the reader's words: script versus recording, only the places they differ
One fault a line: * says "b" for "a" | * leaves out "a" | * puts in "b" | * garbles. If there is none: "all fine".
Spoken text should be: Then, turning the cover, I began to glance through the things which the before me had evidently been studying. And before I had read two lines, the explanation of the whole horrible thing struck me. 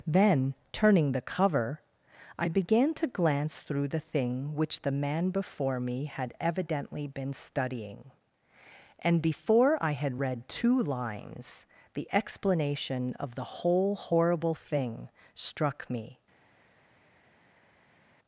* says "thing" for "things"
* puts in "man"